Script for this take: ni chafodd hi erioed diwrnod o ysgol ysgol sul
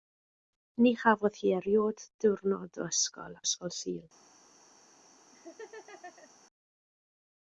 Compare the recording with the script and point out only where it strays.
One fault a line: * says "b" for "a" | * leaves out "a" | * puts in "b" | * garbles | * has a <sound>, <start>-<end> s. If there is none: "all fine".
* has a laugh, 5.3-6.3 s